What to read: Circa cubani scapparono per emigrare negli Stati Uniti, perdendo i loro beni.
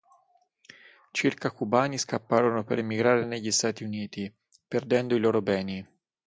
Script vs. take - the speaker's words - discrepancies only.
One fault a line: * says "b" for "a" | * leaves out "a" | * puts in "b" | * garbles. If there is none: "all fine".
all fine